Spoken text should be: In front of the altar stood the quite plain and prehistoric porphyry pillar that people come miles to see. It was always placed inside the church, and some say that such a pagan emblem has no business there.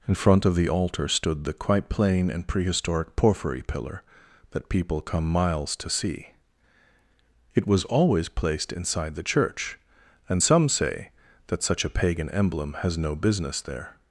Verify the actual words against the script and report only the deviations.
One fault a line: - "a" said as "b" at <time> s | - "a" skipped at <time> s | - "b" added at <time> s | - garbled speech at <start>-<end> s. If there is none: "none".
none